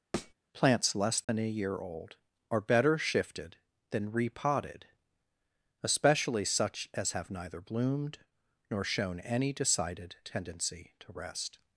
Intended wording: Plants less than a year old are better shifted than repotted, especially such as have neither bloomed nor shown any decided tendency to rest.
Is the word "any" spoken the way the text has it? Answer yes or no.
yes